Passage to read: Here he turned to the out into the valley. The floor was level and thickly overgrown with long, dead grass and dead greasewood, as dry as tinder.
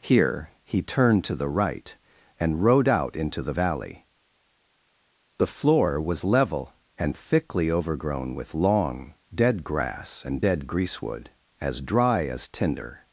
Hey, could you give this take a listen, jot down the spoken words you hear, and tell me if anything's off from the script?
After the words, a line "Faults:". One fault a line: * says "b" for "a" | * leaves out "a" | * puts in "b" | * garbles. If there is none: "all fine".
Here he turned to the right and rode out into the valley. The floor was level and thickly overgrown with long, dead grass and dead greasewood, as dry as tinder.
Faults:
* puts in "right and rode"